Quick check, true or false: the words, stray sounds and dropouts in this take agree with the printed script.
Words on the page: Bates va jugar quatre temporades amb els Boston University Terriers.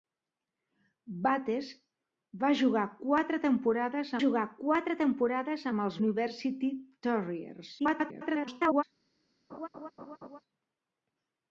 false